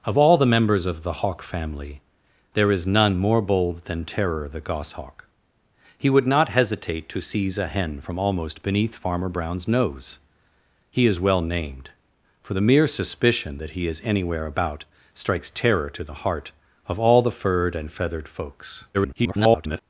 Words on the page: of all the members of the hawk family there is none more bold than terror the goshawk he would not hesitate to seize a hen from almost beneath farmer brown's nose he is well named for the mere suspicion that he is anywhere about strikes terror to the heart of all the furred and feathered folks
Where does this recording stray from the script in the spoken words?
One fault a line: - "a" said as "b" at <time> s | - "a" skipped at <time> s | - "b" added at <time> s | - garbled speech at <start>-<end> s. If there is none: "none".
- garbled speech at 18.9-19.8 s